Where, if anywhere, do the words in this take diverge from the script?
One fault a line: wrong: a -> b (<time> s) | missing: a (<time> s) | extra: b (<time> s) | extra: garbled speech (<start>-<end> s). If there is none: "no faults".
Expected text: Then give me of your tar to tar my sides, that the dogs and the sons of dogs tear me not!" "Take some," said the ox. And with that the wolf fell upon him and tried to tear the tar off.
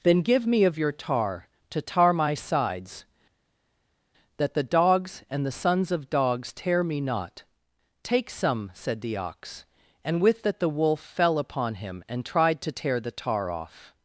no faults